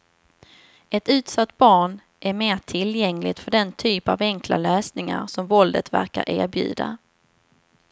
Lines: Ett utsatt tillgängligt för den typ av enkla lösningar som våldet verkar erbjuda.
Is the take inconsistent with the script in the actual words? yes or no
yes